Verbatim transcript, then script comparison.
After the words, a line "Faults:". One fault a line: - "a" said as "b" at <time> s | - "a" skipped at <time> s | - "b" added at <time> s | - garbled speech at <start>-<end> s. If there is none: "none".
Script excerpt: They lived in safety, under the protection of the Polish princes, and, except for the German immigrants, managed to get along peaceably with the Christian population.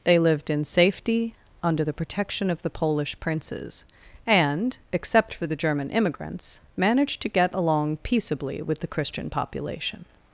They lived in safety, under the protection of the Polish princes, and, except for the German immigrants, managed to get along peaceably with the Christian population.
Faults:
none